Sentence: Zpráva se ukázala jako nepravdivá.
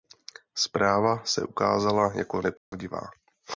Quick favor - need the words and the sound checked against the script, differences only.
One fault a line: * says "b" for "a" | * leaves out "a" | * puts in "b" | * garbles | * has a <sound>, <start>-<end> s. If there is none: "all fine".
* has a dropout, 2.6-2.7 s